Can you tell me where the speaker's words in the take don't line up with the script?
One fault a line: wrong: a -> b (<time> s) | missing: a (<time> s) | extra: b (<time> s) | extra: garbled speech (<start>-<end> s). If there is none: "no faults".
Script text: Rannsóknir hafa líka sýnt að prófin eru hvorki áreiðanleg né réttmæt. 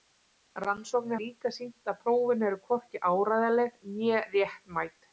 missing: hafa (1.2 s)